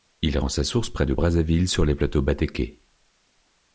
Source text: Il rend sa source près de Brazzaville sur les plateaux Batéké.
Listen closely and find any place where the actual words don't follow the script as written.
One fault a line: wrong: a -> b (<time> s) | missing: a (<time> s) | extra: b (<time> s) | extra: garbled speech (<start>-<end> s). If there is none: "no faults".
no faults